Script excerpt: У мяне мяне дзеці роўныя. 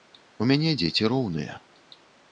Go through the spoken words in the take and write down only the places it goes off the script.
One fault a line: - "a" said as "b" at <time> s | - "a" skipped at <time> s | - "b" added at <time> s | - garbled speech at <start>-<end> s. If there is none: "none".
- "мяне" skipped at 0.7 s